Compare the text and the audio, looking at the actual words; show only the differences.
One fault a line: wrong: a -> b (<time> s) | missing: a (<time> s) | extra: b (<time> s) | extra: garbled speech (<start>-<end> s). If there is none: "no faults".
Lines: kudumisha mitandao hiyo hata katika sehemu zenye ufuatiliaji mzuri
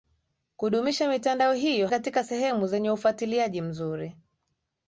missing: hata (1.9 s)